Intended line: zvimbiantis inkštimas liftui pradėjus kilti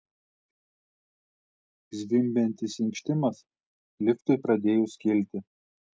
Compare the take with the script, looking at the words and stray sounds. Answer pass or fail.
pass